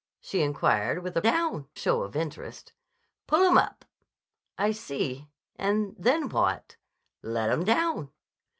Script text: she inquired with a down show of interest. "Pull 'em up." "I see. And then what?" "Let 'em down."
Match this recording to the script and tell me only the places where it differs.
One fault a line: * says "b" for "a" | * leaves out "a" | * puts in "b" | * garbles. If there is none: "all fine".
all fine